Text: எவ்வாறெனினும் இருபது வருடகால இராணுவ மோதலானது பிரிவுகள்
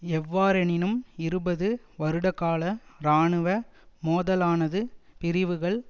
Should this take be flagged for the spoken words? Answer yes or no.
no